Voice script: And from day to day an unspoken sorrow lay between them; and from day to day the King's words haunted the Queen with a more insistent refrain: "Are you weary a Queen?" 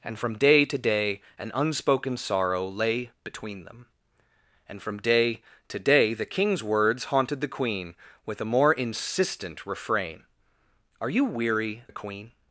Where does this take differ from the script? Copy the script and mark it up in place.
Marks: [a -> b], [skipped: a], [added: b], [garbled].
And from day to day an unspoken sorrow lay between them; and from day to day the King's words haunted the Queen with a more insistent refrain: "Are you weary a Queen?"